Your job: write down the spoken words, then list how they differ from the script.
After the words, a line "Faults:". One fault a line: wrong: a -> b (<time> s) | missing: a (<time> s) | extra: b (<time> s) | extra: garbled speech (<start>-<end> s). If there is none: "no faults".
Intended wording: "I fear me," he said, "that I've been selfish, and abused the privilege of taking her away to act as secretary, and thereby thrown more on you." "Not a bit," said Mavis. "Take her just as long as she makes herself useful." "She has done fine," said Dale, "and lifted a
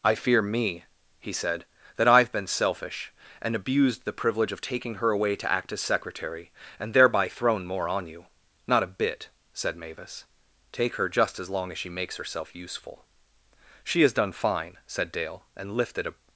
"I fear me," he said, "that I've been selfish, and abused the privilege of taking her away to act as secretary, and thereby thrown more on you." "Not a bit," said Mavis. "Take her just as long as she makes herself useful." "She has done fine," said Dale, "and lifted a
Faults:
no faults